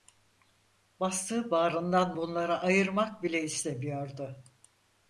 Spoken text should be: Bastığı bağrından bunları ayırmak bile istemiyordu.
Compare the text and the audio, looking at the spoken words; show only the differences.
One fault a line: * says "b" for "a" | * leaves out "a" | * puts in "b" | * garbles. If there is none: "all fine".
all fine